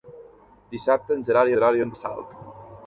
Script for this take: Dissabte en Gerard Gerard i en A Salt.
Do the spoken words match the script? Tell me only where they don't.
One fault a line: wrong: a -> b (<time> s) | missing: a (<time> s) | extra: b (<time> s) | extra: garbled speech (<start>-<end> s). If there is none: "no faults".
no faults